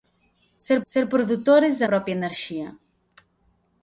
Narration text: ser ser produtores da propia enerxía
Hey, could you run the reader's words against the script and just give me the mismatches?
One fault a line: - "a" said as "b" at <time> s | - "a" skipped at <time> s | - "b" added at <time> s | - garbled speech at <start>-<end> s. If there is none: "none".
none